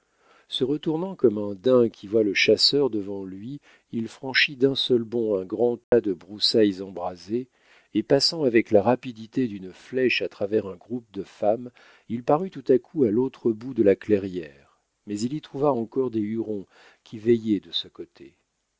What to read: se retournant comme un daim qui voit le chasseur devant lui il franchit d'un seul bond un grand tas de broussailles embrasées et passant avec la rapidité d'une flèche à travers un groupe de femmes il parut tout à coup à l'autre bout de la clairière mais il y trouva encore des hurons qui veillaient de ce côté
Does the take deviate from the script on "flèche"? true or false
false